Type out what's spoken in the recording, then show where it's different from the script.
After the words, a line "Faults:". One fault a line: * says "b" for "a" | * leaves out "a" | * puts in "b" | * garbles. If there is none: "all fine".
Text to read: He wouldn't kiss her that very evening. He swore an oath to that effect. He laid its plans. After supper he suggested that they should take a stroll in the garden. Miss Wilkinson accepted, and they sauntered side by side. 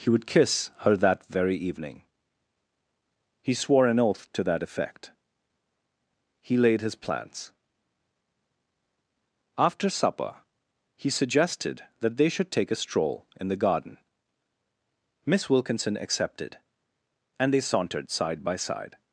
He would kiss her that very evening. He swore an oath to that effect. He laid his plans. After supper he suggested that they should take a stroll in the garden. Miss Wilkinson accepted, and they sauntered side by side.
Faults:
* says "would" for "wouldn't"
* says "his" for "its"